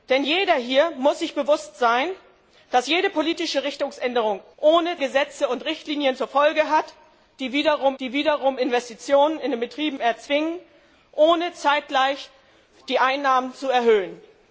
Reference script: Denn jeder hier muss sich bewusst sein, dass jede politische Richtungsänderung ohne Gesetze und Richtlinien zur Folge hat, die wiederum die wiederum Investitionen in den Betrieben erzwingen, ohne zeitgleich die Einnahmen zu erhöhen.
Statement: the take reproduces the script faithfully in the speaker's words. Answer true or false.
true